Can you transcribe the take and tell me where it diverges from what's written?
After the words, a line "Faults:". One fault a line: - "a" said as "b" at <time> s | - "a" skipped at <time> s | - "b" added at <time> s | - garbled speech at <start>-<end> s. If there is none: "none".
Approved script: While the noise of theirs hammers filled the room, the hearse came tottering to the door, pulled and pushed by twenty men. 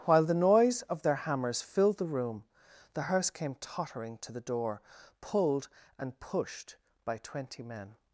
While the noise of their hammers filled the room, the hearse came tottering to the door, pulled and pushed by twenty men.
Faults:
- "theirs" said as "their" at 1.0 s